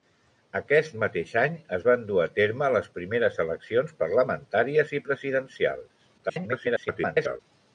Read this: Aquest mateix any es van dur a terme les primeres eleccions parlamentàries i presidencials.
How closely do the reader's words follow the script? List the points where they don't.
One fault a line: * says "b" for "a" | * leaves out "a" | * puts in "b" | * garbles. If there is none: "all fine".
* garbles